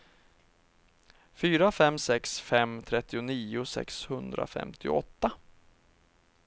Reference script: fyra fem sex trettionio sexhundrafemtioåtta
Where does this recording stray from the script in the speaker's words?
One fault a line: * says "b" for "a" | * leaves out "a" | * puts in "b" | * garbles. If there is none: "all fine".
* puts in "fem"